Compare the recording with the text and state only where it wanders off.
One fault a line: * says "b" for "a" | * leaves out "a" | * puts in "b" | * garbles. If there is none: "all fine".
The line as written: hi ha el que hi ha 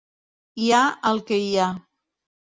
all fine